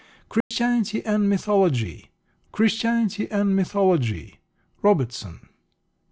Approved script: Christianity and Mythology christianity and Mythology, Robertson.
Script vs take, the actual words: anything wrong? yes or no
no